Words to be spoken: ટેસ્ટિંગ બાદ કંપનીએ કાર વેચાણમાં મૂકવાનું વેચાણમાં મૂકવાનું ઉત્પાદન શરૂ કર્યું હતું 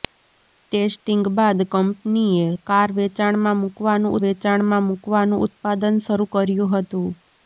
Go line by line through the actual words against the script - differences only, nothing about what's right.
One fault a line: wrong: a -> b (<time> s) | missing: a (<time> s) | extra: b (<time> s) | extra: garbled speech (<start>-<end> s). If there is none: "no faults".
no faults